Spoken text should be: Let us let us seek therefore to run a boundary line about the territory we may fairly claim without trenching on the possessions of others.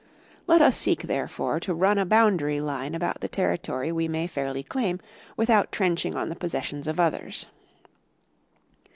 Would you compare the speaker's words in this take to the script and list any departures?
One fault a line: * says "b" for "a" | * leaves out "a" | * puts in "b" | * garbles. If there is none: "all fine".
* leaves out "let us"